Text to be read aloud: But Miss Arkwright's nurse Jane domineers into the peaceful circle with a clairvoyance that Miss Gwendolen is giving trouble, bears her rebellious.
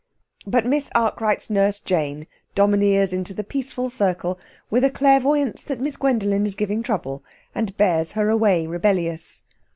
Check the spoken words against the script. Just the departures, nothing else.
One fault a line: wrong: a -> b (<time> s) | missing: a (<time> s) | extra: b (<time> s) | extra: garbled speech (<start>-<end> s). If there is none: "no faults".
extra: and (7.5 s)
extra: away (8.3 s)